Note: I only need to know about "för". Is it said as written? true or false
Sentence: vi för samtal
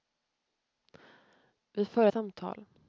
true